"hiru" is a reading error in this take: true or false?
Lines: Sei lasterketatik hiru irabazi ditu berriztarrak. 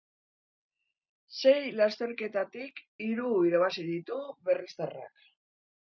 false